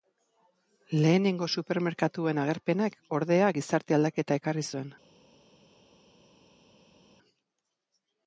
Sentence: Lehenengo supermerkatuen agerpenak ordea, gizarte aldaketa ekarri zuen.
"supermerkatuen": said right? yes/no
yes